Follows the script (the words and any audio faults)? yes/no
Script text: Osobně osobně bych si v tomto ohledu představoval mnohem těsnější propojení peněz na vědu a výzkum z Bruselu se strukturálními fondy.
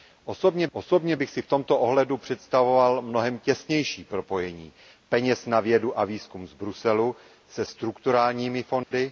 no